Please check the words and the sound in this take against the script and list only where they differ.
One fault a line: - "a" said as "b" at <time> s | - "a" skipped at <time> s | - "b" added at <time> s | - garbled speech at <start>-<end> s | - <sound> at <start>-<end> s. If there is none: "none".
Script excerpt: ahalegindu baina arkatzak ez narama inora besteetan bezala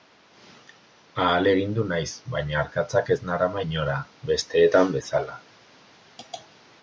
- "naiz" added at 1.9 s